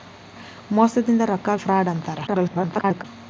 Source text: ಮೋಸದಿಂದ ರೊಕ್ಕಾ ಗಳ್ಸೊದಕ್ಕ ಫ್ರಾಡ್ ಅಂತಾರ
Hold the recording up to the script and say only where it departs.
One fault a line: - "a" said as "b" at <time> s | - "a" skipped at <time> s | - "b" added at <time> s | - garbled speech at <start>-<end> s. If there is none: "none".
- "ಗಳ್ಸೊದಕ್ಕ" skipped at 1.6 s
- garbled speech at 2.3-3.0 s